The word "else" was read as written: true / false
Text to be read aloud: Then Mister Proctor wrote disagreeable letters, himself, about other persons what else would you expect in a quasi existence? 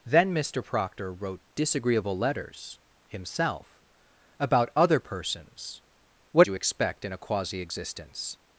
false